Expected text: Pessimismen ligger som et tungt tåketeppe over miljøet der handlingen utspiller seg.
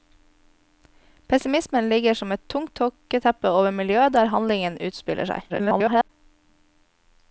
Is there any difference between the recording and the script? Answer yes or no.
yes